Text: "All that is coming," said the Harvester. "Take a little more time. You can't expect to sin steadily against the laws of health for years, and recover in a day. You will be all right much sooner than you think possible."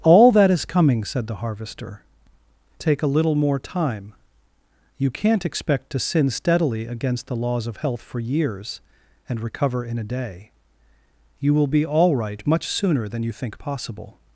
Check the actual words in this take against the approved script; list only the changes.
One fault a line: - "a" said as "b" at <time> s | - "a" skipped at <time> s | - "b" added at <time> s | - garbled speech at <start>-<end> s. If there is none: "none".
none